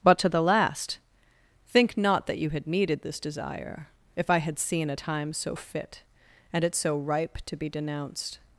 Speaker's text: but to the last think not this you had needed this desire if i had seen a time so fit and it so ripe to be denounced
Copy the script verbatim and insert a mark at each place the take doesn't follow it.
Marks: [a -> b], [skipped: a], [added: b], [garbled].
but to the last think not [this -> that] you had needed this desire if i had seen a time so fit and it so ripe to be denounced